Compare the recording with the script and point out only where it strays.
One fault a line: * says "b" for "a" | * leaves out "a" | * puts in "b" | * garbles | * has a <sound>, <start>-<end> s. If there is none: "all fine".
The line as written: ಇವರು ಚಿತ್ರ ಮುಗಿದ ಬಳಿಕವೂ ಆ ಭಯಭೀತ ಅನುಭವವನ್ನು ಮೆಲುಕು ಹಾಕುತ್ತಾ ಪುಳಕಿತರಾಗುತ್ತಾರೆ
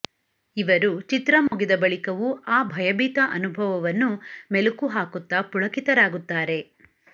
* has a dropout, 1.5-1.5 s